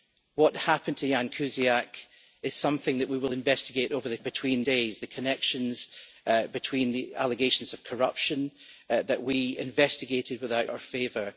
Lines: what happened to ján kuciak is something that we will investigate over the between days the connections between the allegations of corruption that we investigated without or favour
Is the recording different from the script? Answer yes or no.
no